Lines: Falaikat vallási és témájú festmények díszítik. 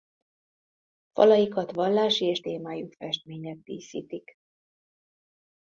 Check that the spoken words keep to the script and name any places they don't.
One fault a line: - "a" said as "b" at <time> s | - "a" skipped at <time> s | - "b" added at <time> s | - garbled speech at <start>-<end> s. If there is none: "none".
none